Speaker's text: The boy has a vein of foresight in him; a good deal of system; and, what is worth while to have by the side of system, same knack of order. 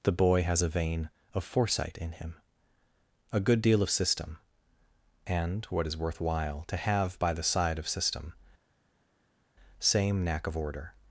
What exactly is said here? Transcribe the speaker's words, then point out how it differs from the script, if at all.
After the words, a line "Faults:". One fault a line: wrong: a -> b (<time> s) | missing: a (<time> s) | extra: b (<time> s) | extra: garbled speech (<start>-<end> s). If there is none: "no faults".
The boy has a vein of foresight in him; a good deal of system; and, what is worth while to have by the side of system, same knack of order.
Faults:
no faults